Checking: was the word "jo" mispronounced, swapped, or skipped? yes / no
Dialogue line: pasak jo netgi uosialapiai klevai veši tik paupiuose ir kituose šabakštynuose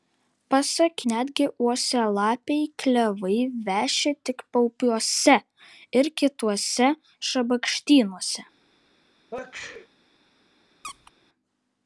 yes